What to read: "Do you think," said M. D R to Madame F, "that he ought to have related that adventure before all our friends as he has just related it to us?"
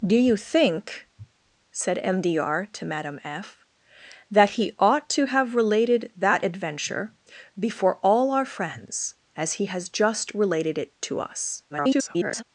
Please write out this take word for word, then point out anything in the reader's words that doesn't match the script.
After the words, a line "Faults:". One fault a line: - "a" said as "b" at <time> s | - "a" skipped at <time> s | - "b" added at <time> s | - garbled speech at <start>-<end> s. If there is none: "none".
"Do you think," said M. D R to Madame F, "that he ought to have related that adventure before all our friends as he has just related it to us?" [garbled]
Faults:
- garbled speech at 11.7-12.4 s